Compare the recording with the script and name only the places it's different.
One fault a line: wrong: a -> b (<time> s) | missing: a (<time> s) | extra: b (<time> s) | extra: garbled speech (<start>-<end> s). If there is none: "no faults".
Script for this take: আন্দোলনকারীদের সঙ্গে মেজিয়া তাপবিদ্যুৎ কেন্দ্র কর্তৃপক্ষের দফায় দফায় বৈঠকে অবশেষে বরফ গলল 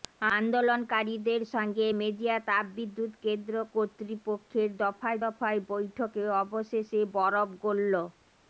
no faults